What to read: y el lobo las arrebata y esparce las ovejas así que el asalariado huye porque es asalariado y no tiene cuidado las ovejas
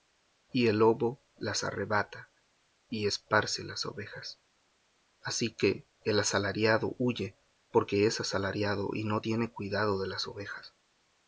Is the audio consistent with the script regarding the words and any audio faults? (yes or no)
no